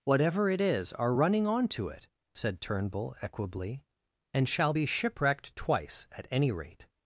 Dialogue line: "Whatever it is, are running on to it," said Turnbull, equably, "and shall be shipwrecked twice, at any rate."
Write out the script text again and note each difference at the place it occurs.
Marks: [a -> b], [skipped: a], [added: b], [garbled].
"Whatever it is, are running on to it," said Turnbull, equably, "and shall be shipwrecked twice, at any rate."